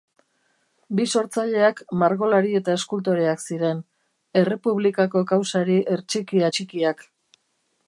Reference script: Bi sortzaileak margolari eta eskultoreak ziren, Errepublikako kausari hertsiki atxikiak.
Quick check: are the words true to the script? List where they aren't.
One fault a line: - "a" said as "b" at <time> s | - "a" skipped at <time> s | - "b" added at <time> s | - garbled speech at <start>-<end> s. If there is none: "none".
none